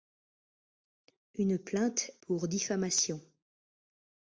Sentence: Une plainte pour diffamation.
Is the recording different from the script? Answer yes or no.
no